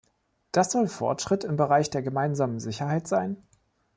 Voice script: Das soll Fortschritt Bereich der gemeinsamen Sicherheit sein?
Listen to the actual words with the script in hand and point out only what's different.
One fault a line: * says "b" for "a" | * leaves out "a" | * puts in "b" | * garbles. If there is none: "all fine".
* puts in "im"